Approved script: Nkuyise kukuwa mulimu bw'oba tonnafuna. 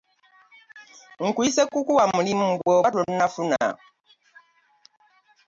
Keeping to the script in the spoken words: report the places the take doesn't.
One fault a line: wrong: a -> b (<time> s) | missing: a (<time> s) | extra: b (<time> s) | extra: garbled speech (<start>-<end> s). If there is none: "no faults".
no faults